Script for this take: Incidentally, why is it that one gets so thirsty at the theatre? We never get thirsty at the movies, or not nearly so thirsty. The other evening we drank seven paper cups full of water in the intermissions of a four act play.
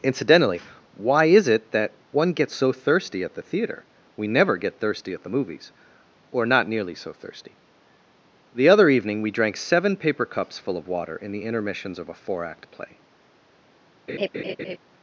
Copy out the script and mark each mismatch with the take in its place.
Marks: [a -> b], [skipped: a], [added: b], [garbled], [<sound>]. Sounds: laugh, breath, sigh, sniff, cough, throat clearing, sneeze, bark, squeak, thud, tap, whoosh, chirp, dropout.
Incidentally, why is it that one gets so thirsty at the theatre? We never get thirsty at the movies, or not nearly so thirsty. The other evening we drank seven paper cups full of water in the intermissions of a four act play. [laugh]